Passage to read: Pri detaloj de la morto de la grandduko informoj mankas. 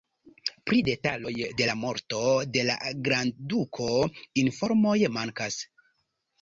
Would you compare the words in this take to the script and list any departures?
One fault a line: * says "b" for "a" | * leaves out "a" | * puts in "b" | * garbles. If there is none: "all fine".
all fine